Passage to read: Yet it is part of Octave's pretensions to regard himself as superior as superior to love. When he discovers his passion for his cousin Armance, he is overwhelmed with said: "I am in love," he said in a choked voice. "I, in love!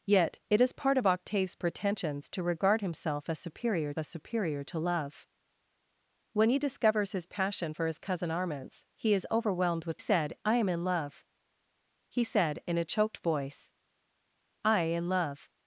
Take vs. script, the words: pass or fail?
pass